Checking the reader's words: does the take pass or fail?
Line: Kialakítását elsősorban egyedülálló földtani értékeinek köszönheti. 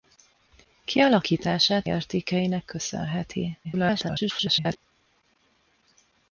fail